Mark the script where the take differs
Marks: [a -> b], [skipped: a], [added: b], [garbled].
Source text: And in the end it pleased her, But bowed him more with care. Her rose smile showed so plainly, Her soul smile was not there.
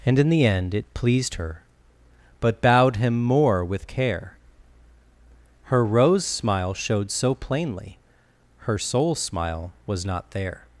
And in the end it pleased her, But bowed him more with care. Her rose smile showed so plainly, Her soul smile was not there.